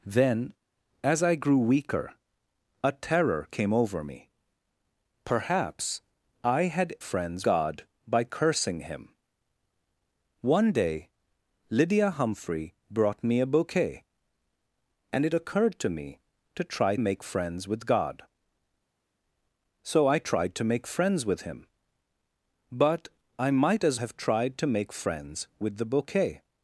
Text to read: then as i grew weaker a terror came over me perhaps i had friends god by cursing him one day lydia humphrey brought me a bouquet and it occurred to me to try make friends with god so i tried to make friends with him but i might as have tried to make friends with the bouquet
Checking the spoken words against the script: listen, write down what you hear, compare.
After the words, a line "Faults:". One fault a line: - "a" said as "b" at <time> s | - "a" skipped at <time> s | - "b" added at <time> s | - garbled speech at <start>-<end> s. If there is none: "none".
then as i grew weaker a terror came over me perhaps i had friends god by cursing him one day lydia humphrey brought me a bouquet and it occurred to me to try make friends with god so i tried to make friends with him but i might as have tried to make friends with the bouquet
Faults:
none